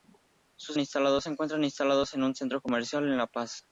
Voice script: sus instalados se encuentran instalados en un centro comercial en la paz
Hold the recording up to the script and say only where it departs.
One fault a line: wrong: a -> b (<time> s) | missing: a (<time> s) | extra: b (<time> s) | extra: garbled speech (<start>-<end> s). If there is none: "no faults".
no faults